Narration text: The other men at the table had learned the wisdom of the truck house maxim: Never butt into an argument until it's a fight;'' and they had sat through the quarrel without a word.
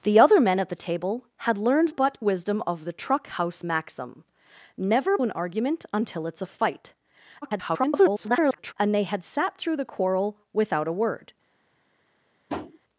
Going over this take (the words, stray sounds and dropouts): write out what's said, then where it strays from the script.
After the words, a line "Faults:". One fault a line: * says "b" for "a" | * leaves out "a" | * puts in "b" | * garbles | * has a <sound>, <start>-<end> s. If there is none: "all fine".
The other men at the table had learned butt wisdom of the truck house maxim: Never an argument until it's a fight;'' [garbled] and they had sat through the quarrel without a word.
Faults:
* says "butt" for "the"
* leaves out "butt into"
* garbles
* has a tap, 12.5-12.8 s